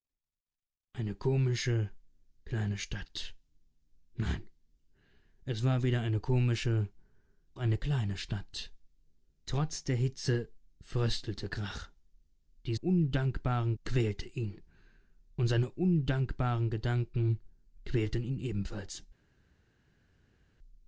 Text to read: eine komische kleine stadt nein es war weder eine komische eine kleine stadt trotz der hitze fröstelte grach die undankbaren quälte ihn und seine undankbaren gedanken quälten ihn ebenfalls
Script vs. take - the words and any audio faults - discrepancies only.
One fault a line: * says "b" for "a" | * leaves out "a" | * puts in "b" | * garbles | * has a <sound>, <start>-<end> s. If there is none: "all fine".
all fine